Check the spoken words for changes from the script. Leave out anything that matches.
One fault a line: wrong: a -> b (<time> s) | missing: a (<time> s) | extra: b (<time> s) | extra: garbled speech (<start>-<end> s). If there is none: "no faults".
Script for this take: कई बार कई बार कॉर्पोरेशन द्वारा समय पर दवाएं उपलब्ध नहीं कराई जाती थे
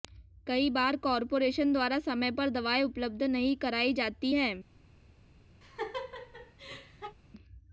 missing: कई बार (0.9 s)
wrong: थे -> हैं (4.3 s)